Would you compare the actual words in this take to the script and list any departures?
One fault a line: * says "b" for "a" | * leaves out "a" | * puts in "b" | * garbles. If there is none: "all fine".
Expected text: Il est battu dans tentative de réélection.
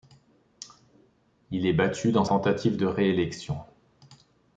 all fine